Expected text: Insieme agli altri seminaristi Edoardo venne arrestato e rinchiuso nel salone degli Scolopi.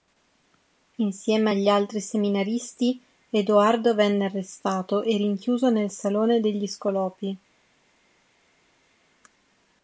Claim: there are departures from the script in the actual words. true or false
false